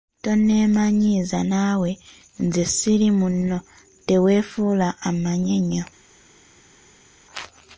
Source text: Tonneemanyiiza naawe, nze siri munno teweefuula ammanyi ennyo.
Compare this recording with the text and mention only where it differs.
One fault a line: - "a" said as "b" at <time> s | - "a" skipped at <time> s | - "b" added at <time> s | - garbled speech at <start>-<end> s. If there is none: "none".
none